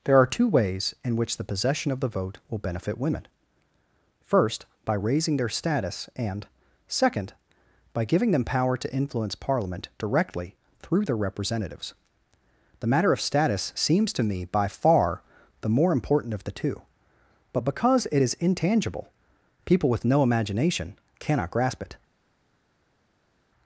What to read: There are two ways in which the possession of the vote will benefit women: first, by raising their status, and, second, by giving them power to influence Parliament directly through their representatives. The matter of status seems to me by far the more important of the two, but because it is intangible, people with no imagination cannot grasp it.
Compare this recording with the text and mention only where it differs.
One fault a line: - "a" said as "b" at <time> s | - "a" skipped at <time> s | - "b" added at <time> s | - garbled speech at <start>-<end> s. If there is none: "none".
none